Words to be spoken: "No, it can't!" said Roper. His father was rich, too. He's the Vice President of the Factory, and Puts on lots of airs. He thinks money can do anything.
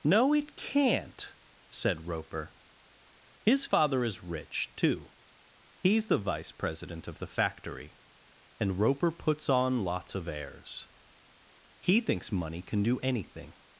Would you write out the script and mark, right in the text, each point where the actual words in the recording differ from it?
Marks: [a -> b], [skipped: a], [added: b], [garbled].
"No, it can't!" said Roper. His father [was -> is] rich, too. He's the Vice President of the Factory, and [added: Roper] Puts on lots of airs. He thinks money can do anything.